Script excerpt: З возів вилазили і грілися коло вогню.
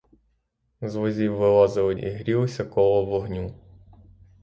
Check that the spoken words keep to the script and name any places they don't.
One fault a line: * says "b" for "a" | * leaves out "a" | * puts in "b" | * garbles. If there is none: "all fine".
all fine